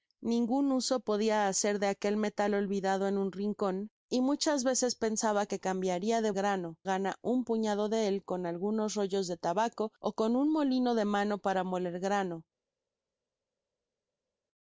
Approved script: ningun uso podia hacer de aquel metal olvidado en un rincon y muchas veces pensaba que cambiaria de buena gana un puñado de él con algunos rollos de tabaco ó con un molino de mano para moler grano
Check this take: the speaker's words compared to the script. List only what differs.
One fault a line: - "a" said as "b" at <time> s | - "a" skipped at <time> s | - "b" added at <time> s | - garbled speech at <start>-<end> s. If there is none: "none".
- "buena" said as "grano" at 6.3 s